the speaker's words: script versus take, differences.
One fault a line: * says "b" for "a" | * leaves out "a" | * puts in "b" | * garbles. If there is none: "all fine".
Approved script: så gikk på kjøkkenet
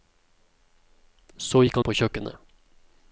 all fine